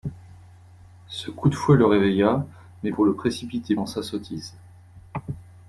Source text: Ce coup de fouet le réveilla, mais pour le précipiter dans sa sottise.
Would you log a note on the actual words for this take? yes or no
no